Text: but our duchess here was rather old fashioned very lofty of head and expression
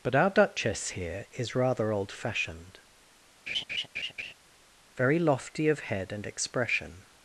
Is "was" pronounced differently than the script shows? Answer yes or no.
yes